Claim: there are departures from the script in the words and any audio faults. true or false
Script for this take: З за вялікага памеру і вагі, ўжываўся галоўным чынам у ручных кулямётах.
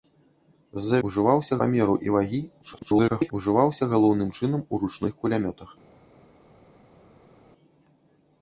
true